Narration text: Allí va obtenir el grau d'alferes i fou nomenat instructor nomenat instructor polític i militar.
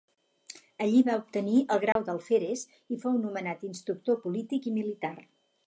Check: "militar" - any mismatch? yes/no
no